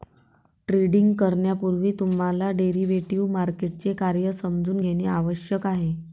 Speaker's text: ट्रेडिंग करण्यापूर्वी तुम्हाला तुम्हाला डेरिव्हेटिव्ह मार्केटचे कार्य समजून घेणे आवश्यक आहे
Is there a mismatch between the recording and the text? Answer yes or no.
yes